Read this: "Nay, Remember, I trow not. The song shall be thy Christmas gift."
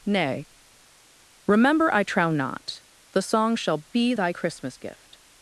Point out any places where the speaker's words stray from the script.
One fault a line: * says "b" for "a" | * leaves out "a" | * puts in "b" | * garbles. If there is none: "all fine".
all fine